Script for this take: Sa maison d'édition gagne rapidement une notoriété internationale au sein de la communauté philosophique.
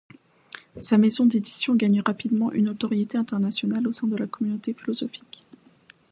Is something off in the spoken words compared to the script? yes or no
no